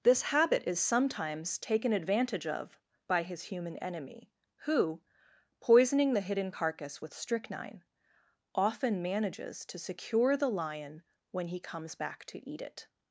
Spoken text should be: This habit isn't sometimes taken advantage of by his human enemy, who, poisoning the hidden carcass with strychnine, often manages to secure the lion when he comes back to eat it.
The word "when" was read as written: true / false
true